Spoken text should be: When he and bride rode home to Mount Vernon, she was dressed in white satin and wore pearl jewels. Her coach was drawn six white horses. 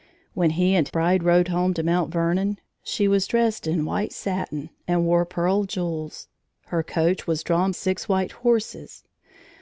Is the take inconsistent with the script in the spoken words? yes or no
no